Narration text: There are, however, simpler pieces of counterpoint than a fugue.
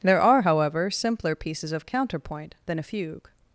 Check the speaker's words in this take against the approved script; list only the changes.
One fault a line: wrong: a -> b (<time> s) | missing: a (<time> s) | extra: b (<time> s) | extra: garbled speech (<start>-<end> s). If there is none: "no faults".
no faults